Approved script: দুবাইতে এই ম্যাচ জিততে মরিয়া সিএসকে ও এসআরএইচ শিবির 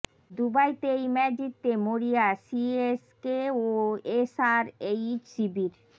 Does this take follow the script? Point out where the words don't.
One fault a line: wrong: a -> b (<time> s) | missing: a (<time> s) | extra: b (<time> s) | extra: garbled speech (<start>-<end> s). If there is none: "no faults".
no faults